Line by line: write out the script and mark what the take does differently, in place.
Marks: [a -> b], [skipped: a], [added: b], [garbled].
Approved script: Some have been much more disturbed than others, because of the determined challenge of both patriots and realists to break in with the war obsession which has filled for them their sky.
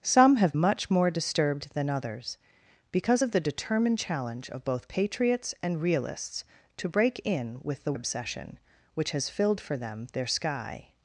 Some have [skipped: been] much more disturbed than others, because of the determined challenge of both patriots and realists to break in with the [skipped: war] obsession which has filled for them their sky.